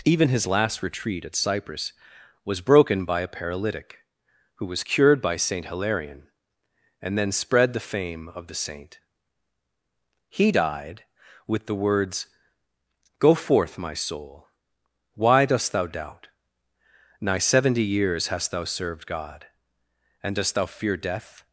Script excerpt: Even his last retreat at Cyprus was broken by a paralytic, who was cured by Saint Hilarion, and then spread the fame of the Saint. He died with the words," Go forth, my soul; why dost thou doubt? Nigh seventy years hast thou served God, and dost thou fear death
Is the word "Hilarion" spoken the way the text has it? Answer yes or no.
yes